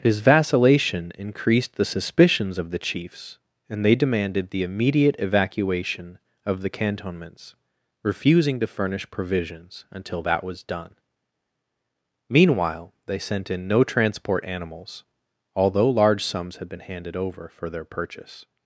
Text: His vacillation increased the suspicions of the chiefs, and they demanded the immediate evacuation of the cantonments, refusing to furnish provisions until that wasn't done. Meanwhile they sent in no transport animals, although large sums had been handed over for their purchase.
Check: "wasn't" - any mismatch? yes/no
yes